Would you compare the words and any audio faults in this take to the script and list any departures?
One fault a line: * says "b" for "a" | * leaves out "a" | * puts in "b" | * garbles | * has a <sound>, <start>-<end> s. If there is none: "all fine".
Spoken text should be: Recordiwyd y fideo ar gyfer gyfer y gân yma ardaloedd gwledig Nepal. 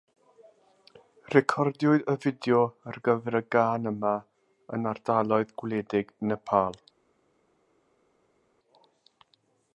* leaves out "gyfer"
* puts in "yn"